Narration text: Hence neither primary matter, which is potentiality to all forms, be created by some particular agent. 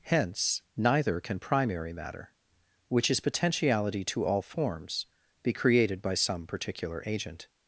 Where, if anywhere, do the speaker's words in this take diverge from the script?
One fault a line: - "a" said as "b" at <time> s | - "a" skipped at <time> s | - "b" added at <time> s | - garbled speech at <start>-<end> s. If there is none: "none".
- "can" added at 1.2 s